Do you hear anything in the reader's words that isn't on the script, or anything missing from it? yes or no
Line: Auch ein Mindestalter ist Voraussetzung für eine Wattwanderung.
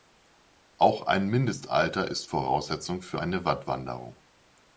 no